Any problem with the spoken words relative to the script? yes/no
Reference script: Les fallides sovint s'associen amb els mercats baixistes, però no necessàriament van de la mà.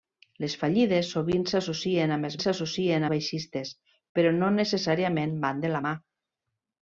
yes